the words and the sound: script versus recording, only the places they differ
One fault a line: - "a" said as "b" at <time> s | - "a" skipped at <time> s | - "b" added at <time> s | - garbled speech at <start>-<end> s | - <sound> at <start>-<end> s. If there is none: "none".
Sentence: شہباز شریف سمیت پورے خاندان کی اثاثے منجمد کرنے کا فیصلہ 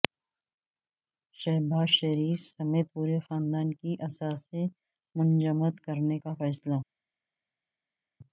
none